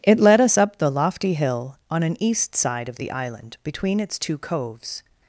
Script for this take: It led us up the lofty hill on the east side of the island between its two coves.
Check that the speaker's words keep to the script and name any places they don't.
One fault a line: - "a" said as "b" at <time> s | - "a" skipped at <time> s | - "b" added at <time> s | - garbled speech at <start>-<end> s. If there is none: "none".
- "the" said as "an" at 2.0 s